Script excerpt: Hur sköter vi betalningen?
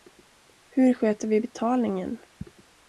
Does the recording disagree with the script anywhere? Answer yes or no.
no